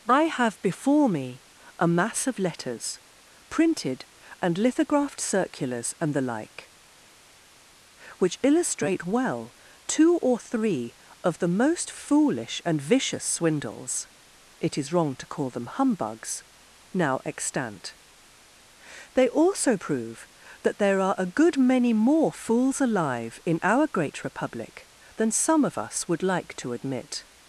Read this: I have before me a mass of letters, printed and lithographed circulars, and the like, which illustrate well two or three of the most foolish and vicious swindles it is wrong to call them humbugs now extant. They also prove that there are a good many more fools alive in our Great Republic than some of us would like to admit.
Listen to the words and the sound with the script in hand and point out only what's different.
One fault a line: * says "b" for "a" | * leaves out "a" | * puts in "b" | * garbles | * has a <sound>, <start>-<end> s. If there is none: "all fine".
all fine